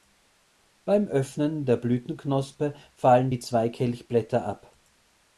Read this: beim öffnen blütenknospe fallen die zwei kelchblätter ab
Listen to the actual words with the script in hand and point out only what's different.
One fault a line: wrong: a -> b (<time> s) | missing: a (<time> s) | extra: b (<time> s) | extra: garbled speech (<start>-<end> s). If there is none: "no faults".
extra: der (1.6 s)